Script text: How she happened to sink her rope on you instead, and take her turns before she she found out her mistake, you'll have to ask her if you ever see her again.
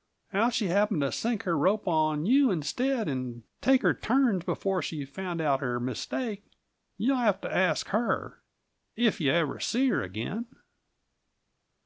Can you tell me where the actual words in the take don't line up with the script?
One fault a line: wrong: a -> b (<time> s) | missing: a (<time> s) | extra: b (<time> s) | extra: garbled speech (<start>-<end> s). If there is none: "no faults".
missing: she (5.1 s)